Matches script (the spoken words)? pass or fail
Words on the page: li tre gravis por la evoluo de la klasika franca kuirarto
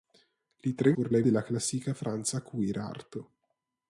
fail